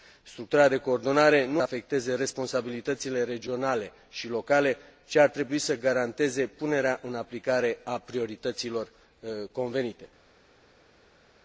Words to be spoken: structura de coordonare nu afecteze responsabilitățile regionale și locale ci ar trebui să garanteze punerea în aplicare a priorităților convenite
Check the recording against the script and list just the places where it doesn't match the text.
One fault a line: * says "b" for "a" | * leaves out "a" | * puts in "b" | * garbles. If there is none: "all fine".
all fine